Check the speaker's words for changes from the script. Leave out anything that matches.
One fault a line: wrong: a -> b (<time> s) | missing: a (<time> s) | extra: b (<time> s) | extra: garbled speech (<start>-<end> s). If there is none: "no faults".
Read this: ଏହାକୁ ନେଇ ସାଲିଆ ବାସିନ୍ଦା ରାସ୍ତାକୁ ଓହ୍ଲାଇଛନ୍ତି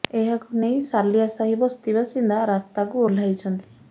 extra: ସାହି ବସ୍ତି (1.4 s)